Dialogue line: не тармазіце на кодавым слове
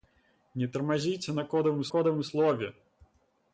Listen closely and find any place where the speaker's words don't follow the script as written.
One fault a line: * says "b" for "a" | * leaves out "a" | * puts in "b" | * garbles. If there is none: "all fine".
* puts in "кодавым"